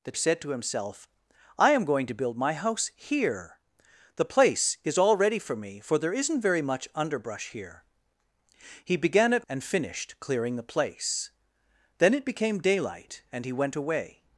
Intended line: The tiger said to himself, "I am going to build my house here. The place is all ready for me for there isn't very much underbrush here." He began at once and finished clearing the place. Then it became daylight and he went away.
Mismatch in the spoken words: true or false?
true